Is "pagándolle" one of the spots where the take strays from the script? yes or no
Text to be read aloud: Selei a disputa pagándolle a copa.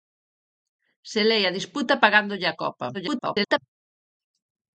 no